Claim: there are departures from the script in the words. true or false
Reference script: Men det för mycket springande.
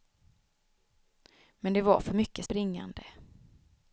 true